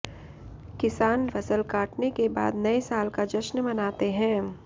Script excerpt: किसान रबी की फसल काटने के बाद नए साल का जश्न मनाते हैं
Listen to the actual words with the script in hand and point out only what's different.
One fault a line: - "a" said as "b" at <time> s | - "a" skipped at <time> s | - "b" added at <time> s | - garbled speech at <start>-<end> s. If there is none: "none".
- "रबी की" skipped at 1.3 s